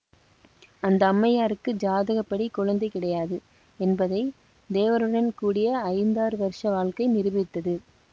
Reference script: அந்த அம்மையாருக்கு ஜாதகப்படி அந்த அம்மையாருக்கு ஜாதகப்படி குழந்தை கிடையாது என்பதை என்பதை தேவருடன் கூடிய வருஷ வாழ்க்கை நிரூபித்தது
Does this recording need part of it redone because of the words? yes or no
yes